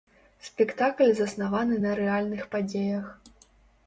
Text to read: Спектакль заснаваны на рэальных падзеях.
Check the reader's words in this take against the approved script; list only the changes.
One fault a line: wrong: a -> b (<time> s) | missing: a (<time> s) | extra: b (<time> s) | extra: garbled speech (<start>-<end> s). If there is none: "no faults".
no faults